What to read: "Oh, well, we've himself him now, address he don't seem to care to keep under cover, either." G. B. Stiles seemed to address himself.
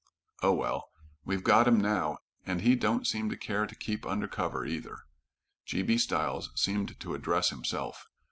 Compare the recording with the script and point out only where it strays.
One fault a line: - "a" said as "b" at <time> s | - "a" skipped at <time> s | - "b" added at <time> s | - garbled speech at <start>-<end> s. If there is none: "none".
- "himself" said as "got" at 1.4 s
- "address" said as "and" at 2.4 s